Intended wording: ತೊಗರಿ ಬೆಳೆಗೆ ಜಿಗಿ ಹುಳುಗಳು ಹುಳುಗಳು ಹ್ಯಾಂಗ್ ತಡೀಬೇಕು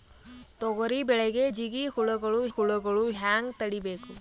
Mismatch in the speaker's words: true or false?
false